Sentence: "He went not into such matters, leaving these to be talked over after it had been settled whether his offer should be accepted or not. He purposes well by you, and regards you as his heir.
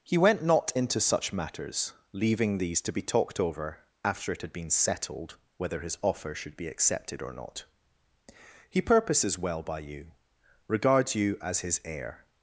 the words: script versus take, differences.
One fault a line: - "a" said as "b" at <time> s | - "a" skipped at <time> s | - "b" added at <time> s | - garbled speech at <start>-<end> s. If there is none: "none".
- "and" skipped at 10.1 s